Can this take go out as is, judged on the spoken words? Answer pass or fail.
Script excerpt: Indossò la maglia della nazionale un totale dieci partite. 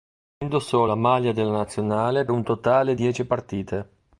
pass